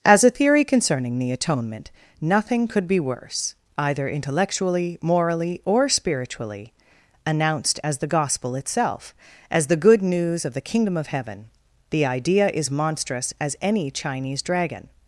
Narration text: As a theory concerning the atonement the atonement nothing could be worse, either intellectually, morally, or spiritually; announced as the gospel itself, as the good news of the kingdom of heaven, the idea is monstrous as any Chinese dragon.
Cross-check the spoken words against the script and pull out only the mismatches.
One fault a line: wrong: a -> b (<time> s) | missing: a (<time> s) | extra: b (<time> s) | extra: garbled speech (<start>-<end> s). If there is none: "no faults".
missing: the atonement (1.9 s)